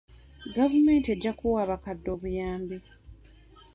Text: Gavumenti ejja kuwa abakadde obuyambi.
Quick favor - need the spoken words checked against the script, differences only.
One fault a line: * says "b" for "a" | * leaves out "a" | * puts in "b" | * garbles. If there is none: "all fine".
all fine